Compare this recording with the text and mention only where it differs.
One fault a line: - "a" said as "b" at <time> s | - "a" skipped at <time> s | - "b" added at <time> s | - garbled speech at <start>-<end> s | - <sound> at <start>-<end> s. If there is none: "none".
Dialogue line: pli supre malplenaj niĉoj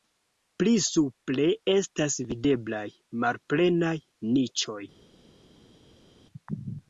- "estas videblaj" added at 1.7 s